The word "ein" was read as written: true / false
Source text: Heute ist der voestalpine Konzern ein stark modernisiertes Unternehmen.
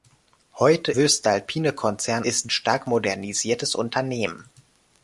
false